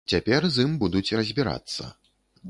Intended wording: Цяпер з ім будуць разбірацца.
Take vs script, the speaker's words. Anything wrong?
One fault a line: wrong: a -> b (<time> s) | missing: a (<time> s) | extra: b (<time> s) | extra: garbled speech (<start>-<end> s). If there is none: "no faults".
no faults